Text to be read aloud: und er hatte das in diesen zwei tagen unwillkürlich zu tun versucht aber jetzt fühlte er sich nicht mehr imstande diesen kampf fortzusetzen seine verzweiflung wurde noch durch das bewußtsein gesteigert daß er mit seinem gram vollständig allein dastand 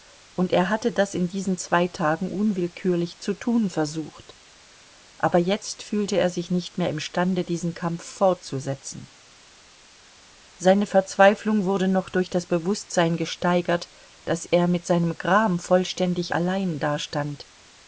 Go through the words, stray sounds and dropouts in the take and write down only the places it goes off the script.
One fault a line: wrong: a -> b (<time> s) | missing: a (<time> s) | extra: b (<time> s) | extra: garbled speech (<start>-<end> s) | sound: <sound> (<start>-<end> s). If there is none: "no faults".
no faults